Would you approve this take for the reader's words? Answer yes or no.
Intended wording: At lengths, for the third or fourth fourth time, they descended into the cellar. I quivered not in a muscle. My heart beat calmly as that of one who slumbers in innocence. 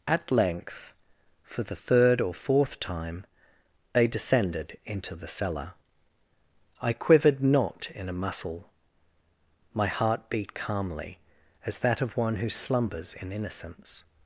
no